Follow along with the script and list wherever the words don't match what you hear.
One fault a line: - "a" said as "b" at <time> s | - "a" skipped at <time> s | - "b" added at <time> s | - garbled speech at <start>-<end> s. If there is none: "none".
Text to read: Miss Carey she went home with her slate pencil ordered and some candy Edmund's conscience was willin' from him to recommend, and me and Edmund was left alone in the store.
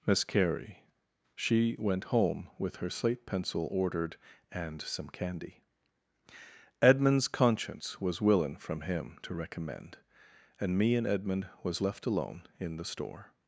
none